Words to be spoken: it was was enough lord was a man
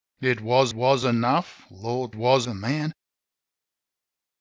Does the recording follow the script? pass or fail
pass